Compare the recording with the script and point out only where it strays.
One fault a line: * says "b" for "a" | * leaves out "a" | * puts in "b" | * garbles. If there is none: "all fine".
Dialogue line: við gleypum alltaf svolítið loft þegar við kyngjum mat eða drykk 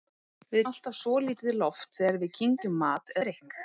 * leaves out "gleypum"
* leaves out "eða"